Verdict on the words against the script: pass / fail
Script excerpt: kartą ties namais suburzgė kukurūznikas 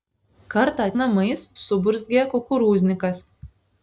fail